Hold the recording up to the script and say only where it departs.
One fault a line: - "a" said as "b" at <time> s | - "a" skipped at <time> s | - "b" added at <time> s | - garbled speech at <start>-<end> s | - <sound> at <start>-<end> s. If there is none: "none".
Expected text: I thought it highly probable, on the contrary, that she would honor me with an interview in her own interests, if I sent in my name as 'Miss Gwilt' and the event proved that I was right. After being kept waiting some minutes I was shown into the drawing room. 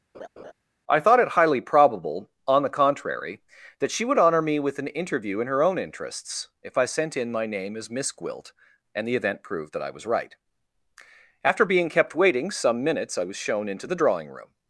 - laugh at 0.1-0.5 s